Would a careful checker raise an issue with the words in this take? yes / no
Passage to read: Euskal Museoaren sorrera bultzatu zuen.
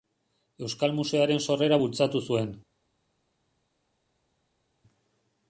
no